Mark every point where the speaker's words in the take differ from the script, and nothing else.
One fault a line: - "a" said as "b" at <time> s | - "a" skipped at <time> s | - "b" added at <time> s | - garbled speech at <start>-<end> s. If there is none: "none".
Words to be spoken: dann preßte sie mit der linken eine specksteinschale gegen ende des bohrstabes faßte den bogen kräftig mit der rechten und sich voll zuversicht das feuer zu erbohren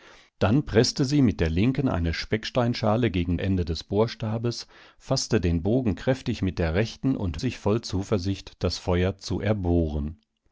none